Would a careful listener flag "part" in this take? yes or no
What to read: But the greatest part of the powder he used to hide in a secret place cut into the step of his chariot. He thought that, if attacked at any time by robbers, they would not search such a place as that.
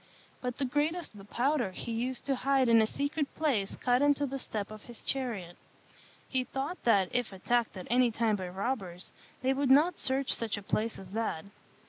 yes